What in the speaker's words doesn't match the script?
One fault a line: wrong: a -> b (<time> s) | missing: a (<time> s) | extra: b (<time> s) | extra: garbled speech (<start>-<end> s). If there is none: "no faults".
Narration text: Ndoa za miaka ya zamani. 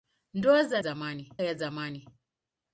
wrong: miaka -> zamani (0.8 s)